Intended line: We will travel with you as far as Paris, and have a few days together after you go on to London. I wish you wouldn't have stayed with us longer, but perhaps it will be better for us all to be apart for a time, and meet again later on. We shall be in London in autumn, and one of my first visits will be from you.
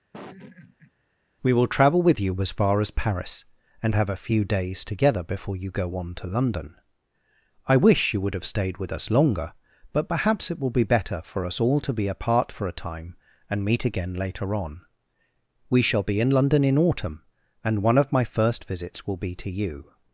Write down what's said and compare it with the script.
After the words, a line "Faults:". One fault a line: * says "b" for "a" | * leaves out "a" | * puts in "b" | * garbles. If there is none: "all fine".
We will travel with you as far as Paris, and have a few days together before you go on to London. I wish you would have stayed with us longer, but perhaps it will be better for us all to be apart for a time, and meet again later on. We shall be in London in autumn, and one of my first visits will be to you.
Faults:
* says "before" for "after"
* says "would" for "wouldn't"
* says "to" for "from"